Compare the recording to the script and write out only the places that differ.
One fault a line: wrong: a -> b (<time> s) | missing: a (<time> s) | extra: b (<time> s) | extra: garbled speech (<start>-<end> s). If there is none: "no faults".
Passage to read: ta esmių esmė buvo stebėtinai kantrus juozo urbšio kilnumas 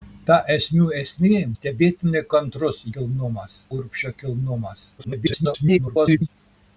missing: buvo (1.4 s)
wrong: juozo -> kilnumas (3.0 s)
extra: garbled speech (5.0-6.3 s)